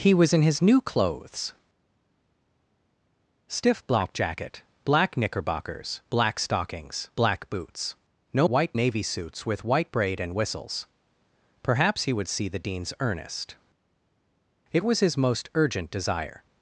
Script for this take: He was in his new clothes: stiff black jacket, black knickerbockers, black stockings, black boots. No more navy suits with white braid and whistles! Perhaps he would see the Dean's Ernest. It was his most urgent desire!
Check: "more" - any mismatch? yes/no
yes